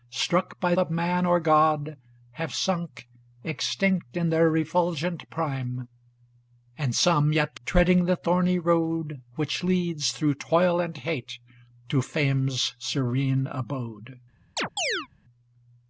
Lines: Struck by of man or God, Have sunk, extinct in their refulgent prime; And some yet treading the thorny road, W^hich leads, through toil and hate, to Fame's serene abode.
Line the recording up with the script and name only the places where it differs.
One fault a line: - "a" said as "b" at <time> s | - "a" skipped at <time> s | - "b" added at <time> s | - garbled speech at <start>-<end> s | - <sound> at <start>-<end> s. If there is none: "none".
- chirp at 14.6-15.1 s